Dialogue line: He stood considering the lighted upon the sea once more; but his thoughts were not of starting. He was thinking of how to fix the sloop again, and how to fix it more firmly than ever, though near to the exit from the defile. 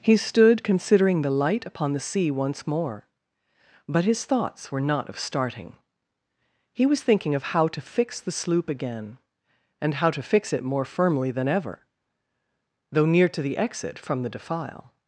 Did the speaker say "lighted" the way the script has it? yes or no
no